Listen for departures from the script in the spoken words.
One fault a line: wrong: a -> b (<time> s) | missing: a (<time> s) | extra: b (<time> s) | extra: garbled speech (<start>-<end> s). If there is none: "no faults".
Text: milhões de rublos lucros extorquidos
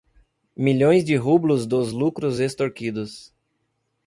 extra: dos (1.7 s)